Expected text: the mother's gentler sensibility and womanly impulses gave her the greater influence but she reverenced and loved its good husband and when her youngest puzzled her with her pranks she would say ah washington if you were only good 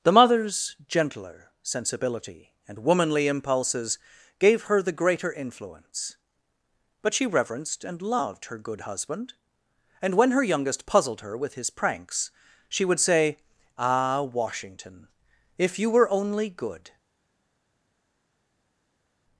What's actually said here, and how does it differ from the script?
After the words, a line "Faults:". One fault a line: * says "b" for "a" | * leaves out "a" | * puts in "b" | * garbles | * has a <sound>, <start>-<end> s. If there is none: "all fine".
the mother's gentler sensibility and womanly impulses gave her the greater influence but she reverenced and loved her good husband and when her youngest puzzled her with his pranks she would say ah washington if you were only good
Faults:
* says "her" for "its"
* says "his" for "her"